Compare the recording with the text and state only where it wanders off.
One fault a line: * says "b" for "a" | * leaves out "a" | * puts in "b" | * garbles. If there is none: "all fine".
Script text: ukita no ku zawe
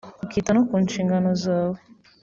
* puts in "nshingano"